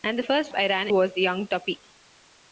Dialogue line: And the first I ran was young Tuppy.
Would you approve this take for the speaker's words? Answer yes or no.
yes